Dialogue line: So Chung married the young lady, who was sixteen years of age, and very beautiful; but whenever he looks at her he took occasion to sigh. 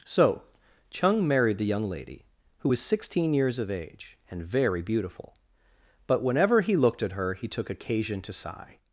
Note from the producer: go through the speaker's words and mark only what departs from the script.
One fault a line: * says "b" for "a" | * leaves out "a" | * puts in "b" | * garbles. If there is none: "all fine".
* says "looked" for "looks"